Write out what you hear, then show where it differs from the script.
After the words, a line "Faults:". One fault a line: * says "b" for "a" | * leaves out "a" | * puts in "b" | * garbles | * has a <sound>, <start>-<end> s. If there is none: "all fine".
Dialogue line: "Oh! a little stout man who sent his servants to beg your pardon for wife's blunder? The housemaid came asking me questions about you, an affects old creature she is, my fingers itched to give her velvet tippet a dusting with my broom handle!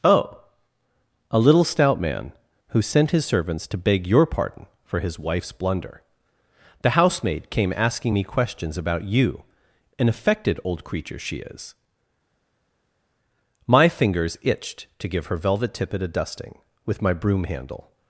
"Oh! a little stout man who sent his servants to beg your pardon for his wife's blunder? The housemaid came asking me questions about you, an affected old creature she is, my fingers itched to give her velvet tippet a dusting with my broom handle!
Faults:
* puts in "his"
* says "affected" for "affects"